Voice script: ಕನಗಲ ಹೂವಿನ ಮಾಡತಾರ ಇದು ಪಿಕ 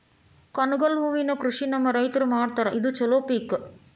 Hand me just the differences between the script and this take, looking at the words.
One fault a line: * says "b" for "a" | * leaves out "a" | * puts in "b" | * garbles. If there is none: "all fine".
* puts in "ಕೃಷಿ ನಮ್ಮ ರೈತರು"
* puts in "ಚಲೋ"